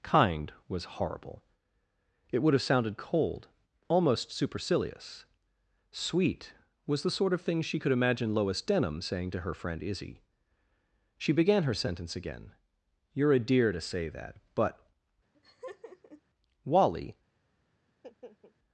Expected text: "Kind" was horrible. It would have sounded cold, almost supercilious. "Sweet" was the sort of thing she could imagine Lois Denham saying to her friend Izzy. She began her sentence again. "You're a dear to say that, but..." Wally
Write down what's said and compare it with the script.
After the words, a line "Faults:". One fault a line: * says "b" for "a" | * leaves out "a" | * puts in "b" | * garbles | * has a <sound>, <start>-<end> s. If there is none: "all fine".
"Kind" was horrible. It would have sounded cold, almost supercilious. "Sweet" was the sort of thing she could imagine Lois Denham saying to her friend Izzy. She began her sentence again. "You're a dear to say that, but..." Wally
Faults:
* has a laugh, 15.3-16.2 s
* has a laugh, 17.9-18.6 s